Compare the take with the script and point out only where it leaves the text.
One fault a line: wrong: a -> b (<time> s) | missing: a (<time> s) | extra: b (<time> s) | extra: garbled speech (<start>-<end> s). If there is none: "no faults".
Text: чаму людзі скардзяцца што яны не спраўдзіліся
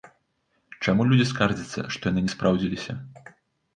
no faults